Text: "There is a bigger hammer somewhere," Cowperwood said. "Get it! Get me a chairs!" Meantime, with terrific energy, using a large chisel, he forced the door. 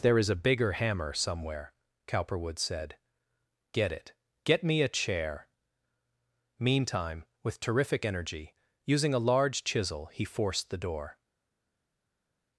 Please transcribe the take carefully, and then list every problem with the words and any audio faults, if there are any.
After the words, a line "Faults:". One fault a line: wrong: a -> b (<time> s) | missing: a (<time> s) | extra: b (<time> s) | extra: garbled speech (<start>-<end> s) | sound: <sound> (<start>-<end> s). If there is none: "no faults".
"There is a bigger hammer somewhere," Cowperwood said. "Get it! Get me a chair!" Meantime, with terrific energy, using a large chisel, he forced the door.
Faults:
wrong: chairs -> chair (4.9 s)